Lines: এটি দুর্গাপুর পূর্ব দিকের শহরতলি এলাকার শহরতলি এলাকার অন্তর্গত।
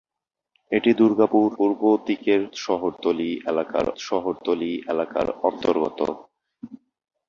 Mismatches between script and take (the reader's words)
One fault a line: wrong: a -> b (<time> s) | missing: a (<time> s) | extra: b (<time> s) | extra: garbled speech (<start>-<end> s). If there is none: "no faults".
no faults